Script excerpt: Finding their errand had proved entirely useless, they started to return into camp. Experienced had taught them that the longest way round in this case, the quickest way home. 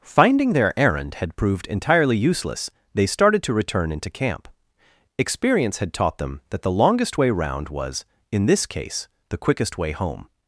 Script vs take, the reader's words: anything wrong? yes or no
yes